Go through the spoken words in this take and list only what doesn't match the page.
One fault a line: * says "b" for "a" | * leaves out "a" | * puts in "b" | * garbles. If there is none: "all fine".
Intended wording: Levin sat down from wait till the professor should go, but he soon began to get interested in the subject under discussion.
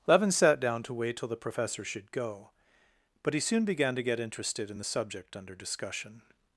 * says "to" for "from"